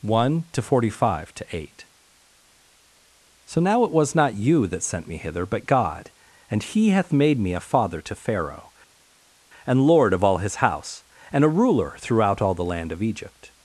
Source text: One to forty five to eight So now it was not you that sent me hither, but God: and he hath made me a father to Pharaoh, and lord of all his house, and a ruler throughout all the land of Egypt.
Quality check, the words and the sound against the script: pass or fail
pass